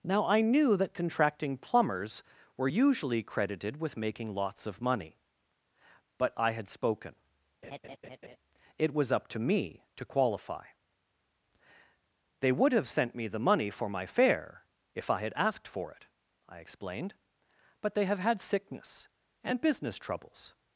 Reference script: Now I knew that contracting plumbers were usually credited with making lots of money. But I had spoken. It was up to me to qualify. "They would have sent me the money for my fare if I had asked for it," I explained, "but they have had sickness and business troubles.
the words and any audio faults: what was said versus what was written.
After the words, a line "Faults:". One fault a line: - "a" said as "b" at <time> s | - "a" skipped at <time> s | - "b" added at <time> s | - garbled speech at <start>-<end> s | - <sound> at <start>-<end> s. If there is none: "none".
Now I knew that contracting plumbers were usually credited with making lots of money. But I had spoken. It was up to me to qualify. "They would have sent me the money for my fare if I had asked for it," I explained, "but they have had sickness and business troubles.
Faults:
- laugh at 7.6-8.4 s